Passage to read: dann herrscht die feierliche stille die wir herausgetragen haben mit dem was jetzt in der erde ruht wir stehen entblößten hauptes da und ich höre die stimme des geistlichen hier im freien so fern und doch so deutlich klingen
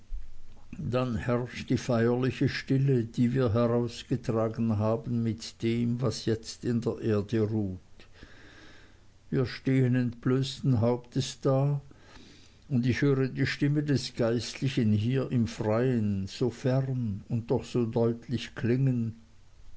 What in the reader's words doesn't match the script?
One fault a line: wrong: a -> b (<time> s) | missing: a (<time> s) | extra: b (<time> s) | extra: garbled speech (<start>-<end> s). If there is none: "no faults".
no faults